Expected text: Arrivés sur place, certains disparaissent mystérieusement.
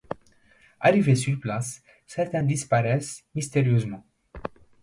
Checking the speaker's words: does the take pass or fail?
pass